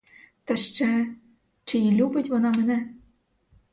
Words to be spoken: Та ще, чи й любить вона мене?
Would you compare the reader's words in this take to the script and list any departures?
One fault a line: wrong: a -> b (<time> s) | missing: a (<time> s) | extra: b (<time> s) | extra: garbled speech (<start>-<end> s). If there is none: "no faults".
no faults